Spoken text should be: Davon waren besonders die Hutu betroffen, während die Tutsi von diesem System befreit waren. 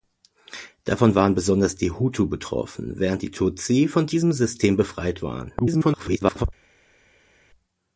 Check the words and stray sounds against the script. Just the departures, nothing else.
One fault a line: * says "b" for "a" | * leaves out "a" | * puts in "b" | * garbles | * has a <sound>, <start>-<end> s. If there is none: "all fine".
* garbles